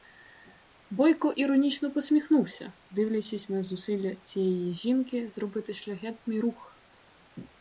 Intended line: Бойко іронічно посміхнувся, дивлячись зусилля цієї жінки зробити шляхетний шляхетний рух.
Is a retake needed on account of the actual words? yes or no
yes